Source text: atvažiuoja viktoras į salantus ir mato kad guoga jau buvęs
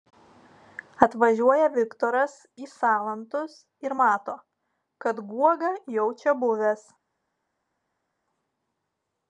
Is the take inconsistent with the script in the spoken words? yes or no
yes